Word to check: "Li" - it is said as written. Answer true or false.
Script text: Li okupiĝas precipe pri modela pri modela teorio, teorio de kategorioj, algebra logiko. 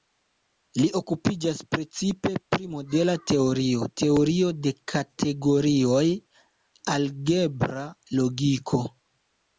true